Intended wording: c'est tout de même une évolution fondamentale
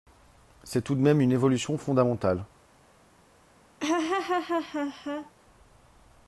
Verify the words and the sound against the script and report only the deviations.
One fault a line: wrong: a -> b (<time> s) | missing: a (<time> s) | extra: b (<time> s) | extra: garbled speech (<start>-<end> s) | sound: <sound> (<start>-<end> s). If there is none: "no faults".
sound: laugh (3.8-5.3 s)